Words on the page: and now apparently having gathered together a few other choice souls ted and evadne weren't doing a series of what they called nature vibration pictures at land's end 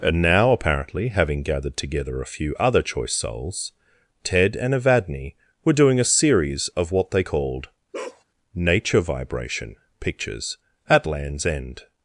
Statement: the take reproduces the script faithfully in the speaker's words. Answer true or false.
false